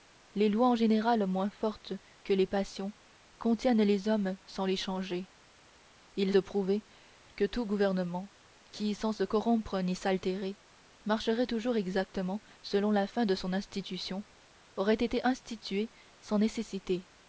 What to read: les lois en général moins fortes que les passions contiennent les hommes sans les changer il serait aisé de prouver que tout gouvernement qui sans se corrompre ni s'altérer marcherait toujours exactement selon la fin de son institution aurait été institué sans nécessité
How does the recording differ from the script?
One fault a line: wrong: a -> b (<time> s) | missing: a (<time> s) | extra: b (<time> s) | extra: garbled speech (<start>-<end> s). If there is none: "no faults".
missing: serait aisé (6.3 s)